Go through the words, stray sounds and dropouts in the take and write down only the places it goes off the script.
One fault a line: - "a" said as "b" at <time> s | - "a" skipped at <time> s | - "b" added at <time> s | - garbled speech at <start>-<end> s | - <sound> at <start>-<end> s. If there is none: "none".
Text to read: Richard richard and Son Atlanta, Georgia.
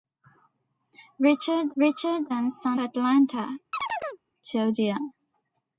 - chirp at 3.7-4.2 s